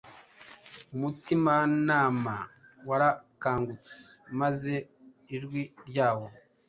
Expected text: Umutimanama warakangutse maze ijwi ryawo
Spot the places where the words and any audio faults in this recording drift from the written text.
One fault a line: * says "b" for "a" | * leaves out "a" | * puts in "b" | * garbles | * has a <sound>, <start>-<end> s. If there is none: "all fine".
all fine